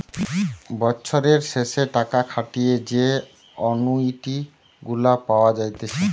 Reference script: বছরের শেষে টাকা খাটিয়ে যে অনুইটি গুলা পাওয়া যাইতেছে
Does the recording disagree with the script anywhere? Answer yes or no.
no